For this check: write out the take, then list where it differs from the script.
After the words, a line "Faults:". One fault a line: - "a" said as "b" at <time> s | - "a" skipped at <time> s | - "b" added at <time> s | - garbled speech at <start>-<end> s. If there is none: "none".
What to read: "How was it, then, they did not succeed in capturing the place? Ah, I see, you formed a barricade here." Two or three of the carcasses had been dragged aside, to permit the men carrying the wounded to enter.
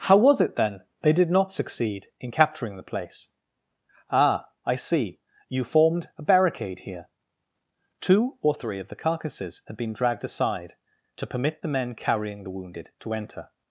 "How was it, then, they did not succeed in capturing the place? Ah, I see, you formed a barricade here." Two or three of the carcasses had been dragged aside, to permit the men carrying the wounded to enter.
Faults:
none